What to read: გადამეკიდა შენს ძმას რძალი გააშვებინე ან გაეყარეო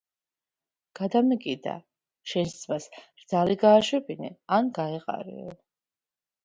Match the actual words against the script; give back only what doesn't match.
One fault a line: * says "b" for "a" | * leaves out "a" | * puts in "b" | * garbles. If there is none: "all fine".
all fine